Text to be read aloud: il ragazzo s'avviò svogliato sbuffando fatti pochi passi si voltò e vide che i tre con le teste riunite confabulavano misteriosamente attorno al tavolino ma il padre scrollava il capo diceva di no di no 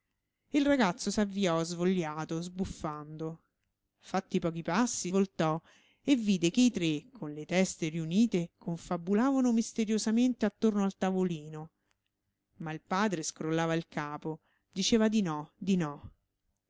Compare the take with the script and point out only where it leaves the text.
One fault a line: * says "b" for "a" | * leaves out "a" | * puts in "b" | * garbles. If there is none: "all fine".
* leaves out "si"